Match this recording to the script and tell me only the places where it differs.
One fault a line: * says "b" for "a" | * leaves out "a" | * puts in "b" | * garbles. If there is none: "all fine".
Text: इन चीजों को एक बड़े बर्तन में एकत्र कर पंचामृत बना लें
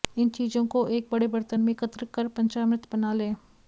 all fine